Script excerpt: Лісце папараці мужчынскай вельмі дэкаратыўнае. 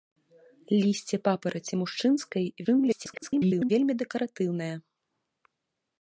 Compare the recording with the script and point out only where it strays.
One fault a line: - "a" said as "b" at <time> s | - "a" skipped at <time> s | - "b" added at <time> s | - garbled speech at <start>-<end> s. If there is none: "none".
- garbled speech at 2.6-3.7 s